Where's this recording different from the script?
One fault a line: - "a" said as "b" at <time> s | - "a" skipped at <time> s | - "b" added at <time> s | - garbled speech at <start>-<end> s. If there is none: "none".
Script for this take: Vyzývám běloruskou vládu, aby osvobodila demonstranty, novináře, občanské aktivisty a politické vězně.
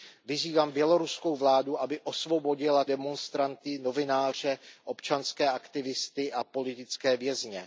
none